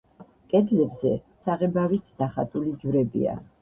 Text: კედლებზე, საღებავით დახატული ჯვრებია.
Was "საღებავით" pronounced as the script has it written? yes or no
yes